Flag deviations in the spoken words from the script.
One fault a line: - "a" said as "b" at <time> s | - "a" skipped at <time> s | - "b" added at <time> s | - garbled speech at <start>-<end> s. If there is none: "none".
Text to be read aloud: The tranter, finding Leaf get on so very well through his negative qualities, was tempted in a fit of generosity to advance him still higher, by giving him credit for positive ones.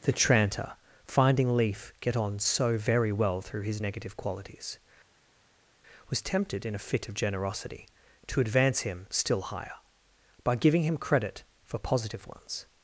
none